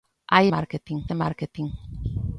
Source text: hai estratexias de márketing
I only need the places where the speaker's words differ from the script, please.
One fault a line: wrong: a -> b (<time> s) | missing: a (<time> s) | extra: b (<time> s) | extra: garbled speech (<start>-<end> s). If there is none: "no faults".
wrong: estratexias -> márketing (0.5 s)